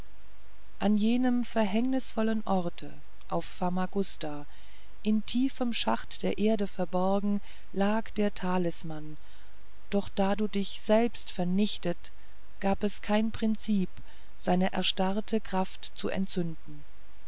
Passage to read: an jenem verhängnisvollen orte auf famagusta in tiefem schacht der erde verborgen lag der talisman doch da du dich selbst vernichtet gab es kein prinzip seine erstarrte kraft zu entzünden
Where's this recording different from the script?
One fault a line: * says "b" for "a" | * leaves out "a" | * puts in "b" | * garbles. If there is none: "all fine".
all fine